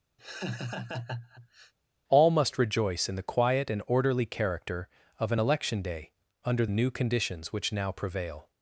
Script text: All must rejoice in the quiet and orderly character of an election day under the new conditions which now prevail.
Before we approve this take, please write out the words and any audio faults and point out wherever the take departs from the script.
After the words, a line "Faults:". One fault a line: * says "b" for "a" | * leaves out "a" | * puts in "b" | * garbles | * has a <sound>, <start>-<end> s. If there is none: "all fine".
All must rejoice in the quiet and orderly character of an election day under new conditions which now prevail.
Faults:
* has a laugh, 0.2-1.7 s
* leaves out "the"